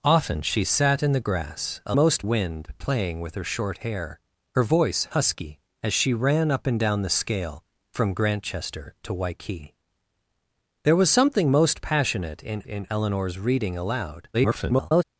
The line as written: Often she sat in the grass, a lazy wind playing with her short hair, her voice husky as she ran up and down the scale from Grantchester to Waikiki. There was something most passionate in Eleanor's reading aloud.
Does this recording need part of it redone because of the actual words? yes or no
yes